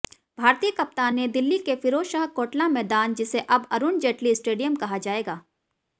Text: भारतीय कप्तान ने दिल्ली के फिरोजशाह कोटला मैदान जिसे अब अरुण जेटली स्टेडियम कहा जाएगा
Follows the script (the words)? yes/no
yes